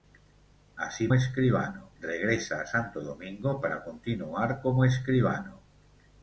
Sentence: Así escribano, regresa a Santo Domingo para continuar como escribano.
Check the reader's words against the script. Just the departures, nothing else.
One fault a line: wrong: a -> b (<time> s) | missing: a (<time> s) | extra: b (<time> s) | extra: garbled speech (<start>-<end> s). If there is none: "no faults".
no faults